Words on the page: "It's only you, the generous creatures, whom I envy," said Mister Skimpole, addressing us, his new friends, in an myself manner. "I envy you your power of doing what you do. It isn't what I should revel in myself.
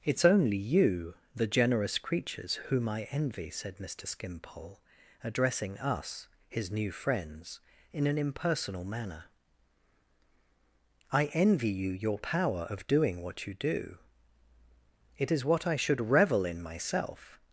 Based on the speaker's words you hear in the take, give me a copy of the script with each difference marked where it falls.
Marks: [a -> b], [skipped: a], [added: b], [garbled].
"It's only you, the generous creatures, whom I envy," said Mister Skimpole, addressing us, his new friends, in an [myself -> impersonal] manner. "I envy you your power of doing what you do. It [isn't -> is] what I should revel in myself.